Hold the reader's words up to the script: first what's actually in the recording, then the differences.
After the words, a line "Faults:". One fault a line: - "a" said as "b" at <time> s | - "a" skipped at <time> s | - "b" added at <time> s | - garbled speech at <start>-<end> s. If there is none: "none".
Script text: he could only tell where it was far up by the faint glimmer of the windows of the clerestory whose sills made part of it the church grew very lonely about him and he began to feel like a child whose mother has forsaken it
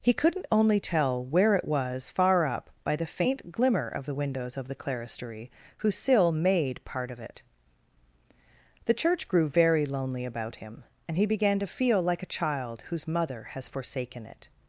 he couldn't only tell where it was far up by the faint glimmer of the windows of the clerestory whose sill made part of it the church grew very lonely about him and he began to feel like a child whose mother has forsaken it
Faults:
- "could" said as "couldn't" at 0.1 s
- "sills" said as "sill" at 6.0 s